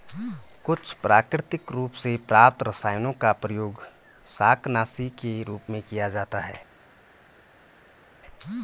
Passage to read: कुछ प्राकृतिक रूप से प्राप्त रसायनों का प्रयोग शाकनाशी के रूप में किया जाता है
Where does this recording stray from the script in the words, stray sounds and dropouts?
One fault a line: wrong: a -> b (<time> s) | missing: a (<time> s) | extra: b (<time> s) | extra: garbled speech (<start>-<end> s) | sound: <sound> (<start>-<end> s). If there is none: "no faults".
no faults